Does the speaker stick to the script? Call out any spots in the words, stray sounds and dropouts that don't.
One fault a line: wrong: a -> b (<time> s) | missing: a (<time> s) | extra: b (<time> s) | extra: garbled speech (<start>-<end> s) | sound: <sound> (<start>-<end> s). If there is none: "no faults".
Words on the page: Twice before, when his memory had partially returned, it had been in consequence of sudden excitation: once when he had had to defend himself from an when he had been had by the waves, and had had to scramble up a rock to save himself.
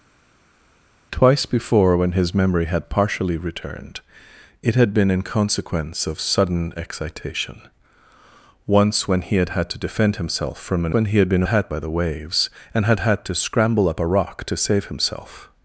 no faults